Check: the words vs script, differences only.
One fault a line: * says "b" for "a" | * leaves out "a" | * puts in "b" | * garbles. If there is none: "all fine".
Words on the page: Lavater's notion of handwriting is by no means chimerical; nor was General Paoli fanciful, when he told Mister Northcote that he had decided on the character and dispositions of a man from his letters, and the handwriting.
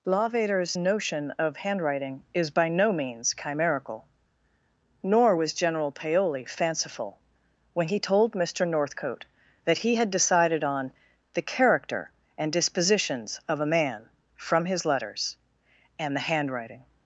all fine